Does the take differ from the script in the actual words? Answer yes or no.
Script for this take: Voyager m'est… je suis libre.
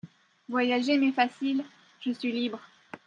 yes